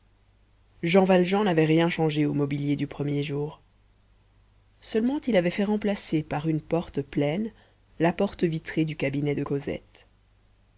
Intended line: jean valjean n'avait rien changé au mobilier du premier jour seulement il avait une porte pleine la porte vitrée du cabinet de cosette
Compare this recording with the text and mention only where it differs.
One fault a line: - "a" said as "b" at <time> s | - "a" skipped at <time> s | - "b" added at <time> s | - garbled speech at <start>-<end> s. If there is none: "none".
- "fait remplacer par" added at 5.5 s